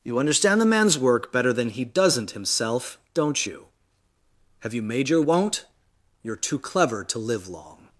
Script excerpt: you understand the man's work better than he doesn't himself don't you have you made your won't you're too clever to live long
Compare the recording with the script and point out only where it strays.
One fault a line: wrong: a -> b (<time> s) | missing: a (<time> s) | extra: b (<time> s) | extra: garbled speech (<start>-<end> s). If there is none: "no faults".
no faults